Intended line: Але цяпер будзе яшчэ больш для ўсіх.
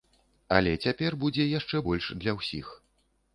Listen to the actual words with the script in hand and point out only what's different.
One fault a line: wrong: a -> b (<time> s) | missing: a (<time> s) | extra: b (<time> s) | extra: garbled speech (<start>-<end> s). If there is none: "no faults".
no faults